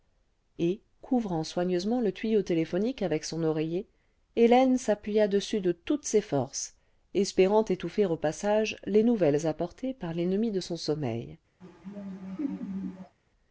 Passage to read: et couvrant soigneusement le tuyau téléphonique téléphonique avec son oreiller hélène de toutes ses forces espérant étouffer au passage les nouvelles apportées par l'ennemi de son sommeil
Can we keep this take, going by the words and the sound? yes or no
no